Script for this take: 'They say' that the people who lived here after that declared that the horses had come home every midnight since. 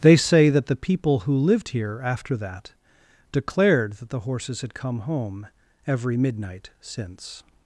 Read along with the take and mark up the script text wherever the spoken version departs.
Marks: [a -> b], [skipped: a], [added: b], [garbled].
'They say' that the people who lived here after that declared that the horses had come home every midnight since.